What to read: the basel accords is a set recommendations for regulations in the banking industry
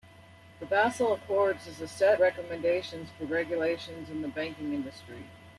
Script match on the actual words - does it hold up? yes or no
yes